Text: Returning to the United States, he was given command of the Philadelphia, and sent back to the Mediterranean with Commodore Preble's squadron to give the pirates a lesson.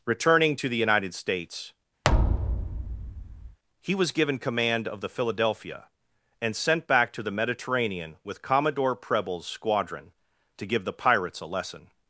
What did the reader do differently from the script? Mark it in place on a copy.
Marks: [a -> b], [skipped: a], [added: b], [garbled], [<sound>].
Returning to the United States, [thud] he was given command of the Philadelphia, and sent back to the Mediterranean with Commodore Preble's squadron to give the pirates a lesson.